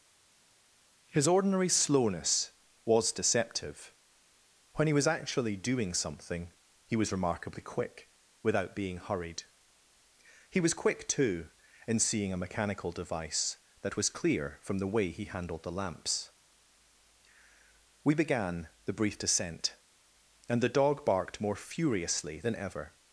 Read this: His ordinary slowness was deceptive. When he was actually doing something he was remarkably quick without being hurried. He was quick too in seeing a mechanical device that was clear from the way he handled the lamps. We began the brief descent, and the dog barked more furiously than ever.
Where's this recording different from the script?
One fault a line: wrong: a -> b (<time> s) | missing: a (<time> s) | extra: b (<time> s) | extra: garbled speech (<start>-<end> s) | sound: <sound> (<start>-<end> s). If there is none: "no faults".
no faults